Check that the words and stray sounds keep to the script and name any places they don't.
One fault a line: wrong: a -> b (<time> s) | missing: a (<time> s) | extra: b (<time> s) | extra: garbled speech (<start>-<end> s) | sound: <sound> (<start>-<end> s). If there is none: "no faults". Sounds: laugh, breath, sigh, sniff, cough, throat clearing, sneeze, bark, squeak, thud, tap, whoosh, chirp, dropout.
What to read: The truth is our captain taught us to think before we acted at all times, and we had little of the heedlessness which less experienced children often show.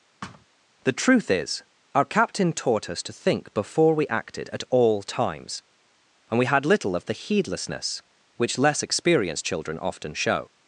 sound: thud (0.2-0.5 s)